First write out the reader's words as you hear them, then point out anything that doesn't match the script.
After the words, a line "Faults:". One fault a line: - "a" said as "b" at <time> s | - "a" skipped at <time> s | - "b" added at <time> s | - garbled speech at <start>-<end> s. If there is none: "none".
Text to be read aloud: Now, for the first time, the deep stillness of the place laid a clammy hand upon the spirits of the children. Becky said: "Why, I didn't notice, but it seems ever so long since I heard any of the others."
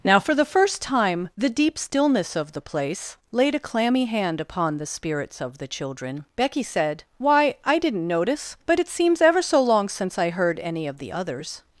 Now, for the first time, the deep stillness of the place laid a clammy hand upon the spirits of the children. Becky said: "Why, I didn't notice, but it seems ever so long since I heard any of the others."
Faults:
none